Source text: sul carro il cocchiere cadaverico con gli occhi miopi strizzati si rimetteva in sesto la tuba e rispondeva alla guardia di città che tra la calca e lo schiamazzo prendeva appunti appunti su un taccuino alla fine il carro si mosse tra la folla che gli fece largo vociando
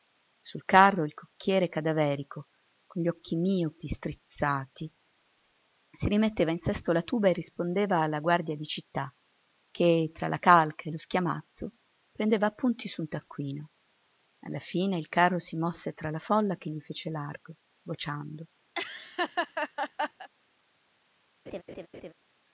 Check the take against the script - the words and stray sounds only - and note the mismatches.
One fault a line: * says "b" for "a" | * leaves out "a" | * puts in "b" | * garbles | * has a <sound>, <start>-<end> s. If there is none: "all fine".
* leaves out "appunti"
* has a laugh, 18.7-20.3 s
* has a laugh, 21.5-22.1 s